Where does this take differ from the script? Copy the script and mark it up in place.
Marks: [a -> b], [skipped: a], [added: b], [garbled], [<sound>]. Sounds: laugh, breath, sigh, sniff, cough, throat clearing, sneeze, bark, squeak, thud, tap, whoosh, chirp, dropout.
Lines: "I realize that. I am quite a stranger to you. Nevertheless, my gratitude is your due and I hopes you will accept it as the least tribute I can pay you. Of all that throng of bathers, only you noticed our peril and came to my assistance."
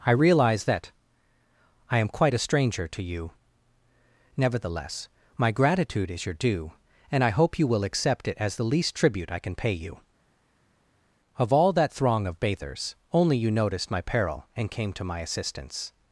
"I realize that. I am quite a stranger to you. Nevertheless, my gratitude is your due and I [hopes -> hope] you will accept it as the least tribute I can pay you. Of all that throng of bathers, only you noticed [our -> my] peril and came to my assistance."